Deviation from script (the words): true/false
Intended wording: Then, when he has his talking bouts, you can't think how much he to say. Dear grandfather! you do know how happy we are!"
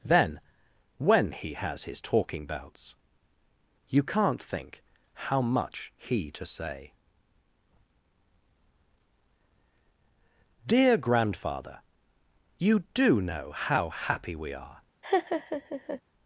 false